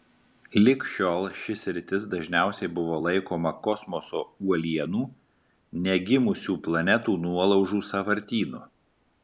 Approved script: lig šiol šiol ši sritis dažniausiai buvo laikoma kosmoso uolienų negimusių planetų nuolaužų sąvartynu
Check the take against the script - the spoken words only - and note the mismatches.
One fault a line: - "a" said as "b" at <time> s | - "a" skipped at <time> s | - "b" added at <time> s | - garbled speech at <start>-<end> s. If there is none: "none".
- "šiol" skipped at 1.2 s